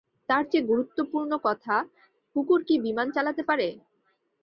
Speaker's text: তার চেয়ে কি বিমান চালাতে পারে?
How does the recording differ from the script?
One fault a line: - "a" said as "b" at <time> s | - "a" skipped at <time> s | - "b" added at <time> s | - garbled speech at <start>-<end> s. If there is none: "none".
- "গুরুত্বপূর্ণ কথা কুকুর" added at 0.7 s